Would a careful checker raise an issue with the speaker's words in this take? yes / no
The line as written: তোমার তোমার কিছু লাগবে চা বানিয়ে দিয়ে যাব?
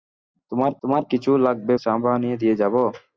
no